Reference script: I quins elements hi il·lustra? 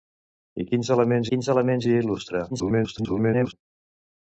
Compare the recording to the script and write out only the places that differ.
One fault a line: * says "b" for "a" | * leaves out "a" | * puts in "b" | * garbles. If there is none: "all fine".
* puts in "quins elements"
* garbles